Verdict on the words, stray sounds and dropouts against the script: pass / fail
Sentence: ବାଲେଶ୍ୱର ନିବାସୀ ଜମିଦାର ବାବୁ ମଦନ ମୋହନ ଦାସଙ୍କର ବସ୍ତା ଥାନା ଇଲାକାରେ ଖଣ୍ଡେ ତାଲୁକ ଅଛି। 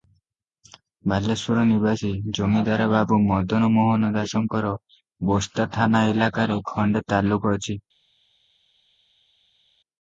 pass